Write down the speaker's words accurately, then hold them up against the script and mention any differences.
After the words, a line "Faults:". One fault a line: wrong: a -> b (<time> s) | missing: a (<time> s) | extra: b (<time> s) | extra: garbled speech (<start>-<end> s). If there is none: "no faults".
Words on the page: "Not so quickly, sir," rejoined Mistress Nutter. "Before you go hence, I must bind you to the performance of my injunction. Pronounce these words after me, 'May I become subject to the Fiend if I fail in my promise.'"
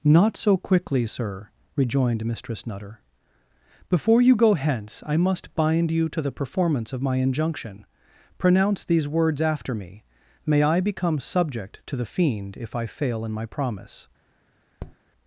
"Not so quickly, sir," rejoined Mistress Nutter. "Before you go hence, I must bind you to the performance of my injunction. Pronounce these words after me, 'May I become subject to the Fiend if I fail in my promise.'"
Faults:
no faults